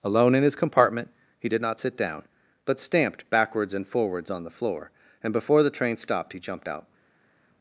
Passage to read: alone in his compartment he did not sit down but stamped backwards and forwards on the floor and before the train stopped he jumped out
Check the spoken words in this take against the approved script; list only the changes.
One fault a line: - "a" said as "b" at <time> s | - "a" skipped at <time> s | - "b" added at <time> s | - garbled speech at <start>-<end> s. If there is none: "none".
none